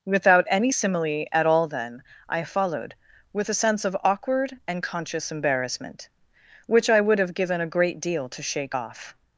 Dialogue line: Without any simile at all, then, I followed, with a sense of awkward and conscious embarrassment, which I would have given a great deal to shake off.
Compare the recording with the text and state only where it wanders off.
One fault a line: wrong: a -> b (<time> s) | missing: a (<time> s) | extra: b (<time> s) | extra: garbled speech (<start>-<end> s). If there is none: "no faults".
no faults